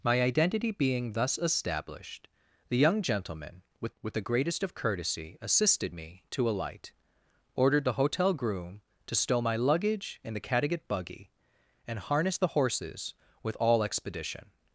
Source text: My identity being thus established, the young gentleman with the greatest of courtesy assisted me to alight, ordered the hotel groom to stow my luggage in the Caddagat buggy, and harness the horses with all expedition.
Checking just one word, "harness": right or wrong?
right